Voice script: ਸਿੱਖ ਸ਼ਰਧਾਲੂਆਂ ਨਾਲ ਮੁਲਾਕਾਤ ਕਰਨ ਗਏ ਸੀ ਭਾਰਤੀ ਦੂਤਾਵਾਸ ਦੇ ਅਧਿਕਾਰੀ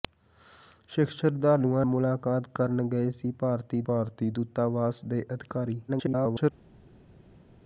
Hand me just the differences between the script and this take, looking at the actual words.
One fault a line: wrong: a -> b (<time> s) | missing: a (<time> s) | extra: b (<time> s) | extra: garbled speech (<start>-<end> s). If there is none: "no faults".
missing: ਨਾਲ (1.9 s)
extra: ਭਾਰਤੀ (3.9 s)
extra: garbled speech (5.9-6.5 s)